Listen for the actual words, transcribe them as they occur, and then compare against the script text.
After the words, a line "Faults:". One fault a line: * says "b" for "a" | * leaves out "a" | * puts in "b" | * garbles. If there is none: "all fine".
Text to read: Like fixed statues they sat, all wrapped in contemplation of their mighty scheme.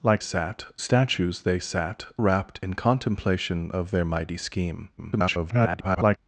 Like sat statues they sat, wrapped in contemplation of their mighty scheme. [garbled]
Faults:
* says "sat" for "fixed"
* leaves out "all"
* garbles